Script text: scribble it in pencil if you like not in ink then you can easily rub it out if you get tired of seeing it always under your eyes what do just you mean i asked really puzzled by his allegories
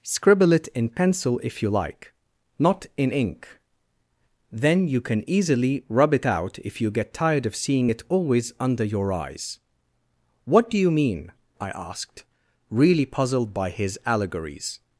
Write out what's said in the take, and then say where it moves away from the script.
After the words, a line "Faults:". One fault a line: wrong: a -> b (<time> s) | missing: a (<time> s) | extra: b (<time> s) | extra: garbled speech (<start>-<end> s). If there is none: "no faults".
scribble it in pencil if you like not in ink then you can easily rub it out if you get tired of seeing it always under your eyes what do you mean i asked really puzzled by his allegories
Faults:
missing: just (10.8 s)